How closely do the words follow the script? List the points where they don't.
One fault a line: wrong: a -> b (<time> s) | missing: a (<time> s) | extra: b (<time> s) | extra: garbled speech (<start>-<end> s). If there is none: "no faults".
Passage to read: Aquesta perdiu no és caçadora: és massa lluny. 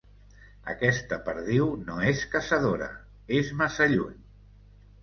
no faults